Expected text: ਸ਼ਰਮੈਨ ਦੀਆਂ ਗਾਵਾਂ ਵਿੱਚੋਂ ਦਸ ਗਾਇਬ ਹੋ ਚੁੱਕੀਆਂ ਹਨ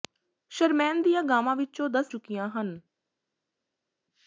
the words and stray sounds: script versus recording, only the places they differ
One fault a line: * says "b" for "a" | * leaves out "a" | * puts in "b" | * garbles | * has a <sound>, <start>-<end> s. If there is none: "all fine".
* leaves out "ਗਾਇਬ ਹੋ"